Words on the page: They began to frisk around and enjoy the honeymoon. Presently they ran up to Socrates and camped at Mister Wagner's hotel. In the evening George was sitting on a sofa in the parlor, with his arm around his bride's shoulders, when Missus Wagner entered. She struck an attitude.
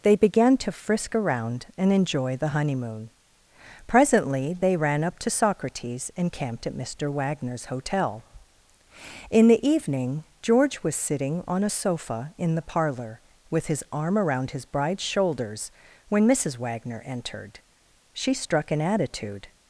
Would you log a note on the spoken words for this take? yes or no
no